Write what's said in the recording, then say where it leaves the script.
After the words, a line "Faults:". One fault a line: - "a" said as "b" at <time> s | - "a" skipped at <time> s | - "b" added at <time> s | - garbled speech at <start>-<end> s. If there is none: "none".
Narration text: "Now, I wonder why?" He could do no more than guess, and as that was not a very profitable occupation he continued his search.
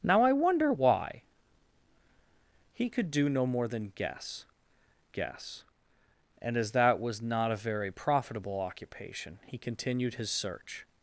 "Now, I wonder why?" He could do no more than guess guess, and as that was not a very profitable occupation he continued his search.
Faults:
- "guess" added at 5.1 s